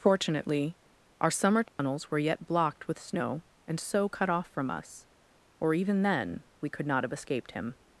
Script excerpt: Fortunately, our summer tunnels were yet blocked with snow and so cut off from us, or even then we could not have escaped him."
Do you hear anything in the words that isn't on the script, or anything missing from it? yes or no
no